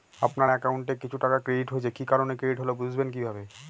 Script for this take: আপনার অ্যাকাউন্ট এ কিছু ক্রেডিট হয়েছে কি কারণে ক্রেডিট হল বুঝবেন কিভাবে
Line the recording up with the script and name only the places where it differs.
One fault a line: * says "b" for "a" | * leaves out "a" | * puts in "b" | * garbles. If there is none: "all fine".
* puts in "টাকা"